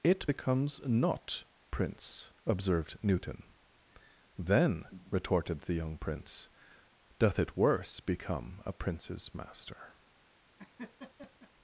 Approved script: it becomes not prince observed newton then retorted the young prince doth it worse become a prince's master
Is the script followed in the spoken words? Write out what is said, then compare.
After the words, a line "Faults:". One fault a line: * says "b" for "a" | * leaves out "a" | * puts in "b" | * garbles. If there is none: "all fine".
it becomes not prince observed newton then retorted the young prince doth it worse become a prince's master
Faults:
all fine